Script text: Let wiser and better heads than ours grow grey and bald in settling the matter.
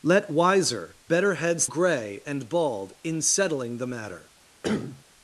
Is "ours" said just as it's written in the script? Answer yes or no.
no